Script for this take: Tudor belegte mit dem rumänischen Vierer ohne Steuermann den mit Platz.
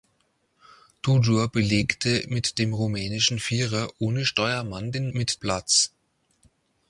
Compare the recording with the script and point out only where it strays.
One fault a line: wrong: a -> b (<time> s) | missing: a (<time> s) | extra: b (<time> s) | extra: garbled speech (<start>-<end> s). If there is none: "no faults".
no faults